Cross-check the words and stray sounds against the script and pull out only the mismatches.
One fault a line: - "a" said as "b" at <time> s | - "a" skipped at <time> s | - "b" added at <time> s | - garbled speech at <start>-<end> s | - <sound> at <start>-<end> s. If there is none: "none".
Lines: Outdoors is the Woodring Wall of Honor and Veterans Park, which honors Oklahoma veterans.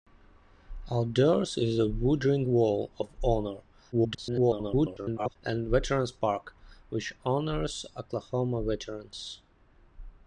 - garbled speech at 3.9-5.4 s